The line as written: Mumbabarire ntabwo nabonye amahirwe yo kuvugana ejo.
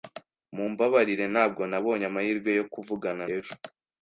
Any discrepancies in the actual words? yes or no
no